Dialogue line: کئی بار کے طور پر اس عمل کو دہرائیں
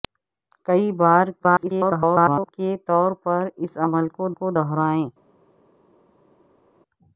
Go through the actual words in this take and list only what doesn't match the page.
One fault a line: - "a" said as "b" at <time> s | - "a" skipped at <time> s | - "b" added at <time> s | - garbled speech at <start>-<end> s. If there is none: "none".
- garbled speech at 1.4-2.5 s
- "کو" added at 4.3 s